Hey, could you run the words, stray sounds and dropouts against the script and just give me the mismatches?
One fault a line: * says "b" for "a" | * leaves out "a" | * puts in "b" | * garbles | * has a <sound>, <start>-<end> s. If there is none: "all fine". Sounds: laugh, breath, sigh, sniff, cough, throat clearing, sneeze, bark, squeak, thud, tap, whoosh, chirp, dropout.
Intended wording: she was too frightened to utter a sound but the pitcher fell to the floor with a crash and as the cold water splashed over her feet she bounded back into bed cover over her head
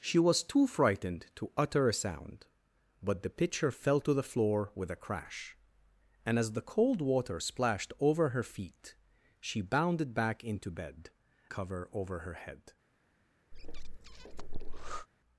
* has a breath, 13.5-15.1 s